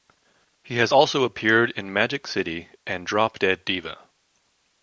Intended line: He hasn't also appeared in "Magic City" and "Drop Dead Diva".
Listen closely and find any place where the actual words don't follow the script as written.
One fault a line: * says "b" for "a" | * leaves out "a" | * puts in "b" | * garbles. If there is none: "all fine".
* says "has" for "hasn't"